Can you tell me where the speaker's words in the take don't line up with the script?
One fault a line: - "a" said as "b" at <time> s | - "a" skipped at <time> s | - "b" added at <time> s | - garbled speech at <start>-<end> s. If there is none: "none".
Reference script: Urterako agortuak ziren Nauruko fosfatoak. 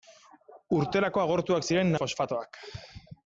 - "Nauruko" skipped at 1.9 s